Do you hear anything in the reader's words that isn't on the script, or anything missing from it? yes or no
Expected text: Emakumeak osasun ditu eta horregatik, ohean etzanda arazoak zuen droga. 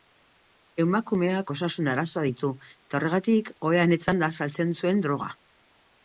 yes